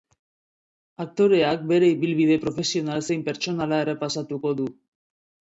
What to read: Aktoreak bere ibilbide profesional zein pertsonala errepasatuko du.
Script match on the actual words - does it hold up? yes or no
yes